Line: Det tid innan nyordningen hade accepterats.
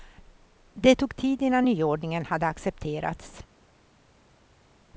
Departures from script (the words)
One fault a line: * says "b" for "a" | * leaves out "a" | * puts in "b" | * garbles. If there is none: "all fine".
* puts in "tog"